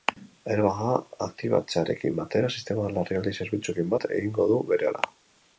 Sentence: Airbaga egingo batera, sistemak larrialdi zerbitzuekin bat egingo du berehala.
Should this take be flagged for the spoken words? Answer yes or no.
yes